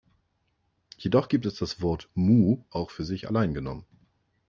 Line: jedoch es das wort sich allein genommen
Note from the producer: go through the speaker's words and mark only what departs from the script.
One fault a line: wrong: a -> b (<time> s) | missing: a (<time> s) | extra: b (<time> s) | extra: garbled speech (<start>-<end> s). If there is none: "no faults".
extra: gibt (1.3 s)
extra: mu auch für (2.1 s)